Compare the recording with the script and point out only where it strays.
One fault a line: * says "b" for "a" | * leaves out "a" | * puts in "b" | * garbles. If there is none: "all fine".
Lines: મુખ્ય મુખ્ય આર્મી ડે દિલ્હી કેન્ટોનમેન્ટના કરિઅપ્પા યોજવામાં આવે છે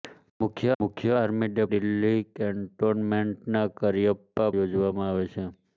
all fine